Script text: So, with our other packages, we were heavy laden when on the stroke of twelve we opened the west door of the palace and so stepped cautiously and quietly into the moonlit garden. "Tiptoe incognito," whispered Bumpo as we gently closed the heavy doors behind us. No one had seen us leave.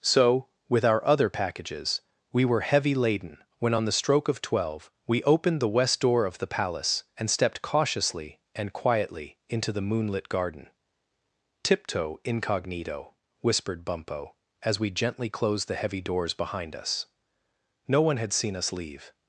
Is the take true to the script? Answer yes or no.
no